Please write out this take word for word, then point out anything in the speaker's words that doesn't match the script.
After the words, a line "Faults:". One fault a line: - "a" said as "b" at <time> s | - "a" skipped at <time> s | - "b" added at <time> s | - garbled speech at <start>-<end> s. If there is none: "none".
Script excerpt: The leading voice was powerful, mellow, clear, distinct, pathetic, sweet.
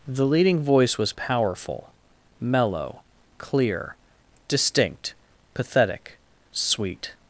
The leading voice was powerful, mellow, clear, distinct, pathetic, sweet.
Faults:
none